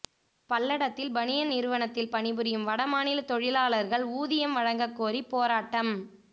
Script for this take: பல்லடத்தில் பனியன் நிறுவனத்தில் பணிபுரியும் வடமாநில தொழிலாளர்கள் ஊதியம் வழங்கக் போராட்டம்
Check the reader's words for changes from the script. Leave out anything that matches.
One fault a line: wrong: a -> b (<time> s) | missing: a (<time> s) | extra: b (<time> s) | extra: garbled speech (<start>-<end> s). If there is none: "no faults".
extra: கோரி (5.0 s)